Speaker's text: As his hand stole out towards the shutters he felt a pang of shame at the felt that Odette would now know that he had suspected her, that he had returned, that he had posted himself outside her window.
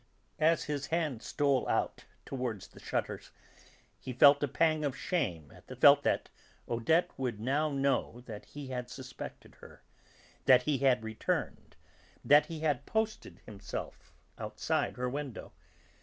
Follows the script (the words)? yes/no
yes